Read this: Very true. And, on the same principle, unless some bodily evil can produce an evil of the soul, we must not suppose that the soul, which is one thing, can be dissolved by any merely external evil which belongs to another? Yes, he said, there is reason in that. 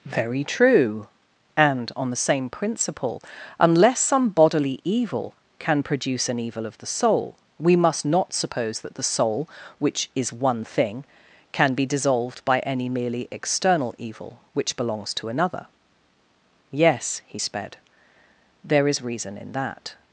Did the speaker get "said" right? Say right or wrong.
wrong